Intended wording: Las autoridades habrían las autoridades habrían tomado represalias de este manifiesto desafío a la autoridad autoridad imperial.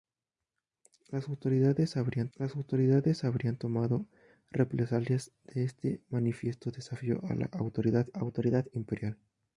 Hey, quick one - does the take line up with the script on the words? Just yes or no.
yes